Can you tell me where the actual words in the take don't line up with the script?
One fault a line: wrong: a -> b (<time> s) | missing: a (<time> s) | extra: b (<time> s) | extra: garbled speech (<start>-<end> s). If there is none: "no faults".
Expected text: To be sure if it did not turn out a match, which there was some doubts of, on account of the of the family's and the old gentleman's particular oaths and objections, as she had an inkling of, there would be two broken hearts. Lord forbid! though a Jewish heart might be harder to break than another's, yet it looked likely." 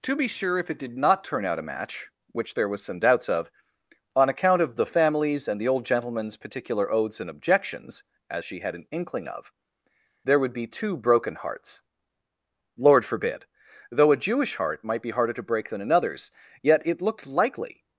missing: of the (4.9 s)